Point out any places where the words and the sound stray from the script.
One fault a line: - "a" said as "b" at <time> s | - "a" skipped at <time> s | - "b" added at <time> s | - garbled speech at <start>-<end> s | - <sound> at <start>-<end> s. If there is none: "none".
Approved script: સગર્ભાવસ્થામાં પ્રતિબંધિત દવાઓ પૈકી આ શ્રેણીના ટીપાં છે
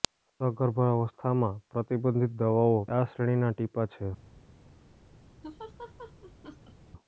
- "પૈકી" skipped at 2.8 s
- laugh at 5.4-6.7 s